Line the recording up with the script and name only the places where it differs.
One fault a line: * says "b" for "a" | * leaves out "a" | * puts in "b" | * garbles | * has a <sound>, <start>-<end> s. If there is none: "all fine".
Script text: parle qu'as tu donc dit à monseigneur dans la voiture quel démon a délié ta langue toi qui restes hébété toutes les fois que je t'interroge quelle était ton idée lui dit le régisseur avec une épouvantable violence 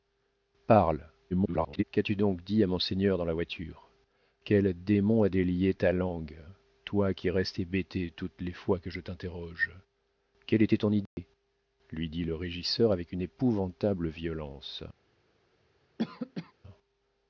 * garbles
* has a dropout, 11.1-11.2 s
* has a cough, 16.0-16.5 s